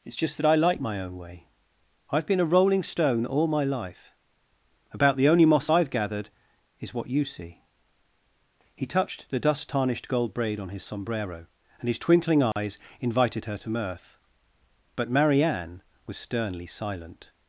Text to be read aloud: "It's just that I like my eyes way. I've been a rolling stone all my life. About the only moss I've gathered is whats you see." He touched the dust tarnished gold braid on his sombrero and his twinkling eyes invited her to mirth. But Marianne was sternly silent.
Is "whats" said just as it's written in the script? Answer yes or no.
no